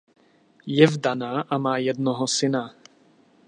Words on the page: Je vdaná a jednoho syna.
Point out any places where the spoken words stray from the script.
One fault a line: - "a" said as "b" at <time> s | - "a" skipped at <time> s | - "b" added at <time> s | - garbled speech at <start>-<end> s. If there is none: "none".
- "má" added at 1.6 s